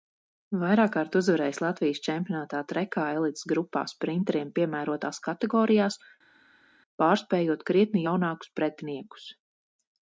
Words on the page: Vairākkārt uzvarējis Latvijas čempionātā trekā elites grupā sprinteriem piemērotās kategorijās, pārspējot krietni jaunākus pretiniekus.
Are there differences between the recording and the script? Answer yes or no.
no